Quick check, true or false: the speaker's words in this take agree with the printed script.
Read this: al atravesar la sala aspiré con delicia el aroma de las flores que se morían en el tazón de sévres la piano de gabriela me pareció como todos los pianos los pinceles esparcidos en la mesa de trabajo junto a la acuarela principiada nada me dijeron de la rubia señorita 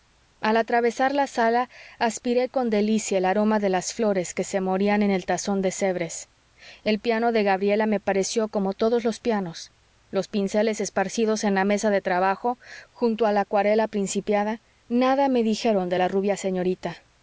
false